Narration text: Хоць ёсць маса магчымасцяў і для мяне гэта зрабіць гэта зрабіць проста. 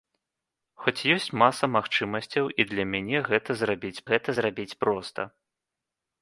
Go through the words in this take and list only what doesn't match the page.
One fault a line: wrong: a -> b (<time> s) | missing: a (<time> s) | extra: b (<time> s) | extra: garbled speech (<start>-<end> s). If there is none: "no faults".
no faults